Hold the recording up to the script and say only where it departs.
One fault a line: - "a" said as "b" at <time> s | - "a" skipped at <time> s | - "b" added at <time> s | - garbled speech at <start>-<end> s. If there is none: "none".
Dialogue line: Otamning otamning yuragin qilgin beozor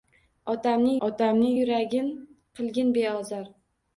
none